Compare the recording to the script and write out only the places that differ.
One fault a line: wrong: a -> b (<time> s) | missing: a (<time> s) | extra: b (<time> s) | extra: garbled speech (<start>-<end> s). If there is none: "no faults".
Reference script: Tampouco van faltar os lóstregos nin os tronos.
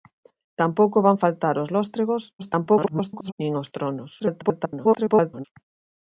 extra: garbled speech (2.4-3.3 s)
extra: garbled speech (4.2-5.4 s)